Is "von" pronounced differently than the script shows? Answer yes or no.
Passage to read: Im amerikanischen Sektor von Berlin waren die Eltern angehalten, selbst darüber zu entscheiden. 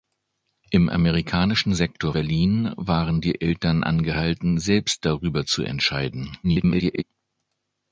yes